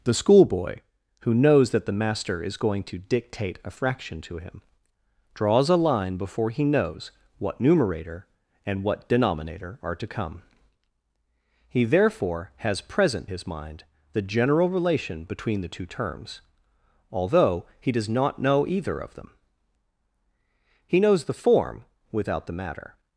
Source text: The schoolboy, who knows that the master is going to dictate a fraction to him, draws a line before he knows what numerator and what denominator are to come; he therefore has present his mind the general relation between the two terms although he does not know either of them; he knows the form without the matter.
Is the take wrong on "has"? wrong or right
right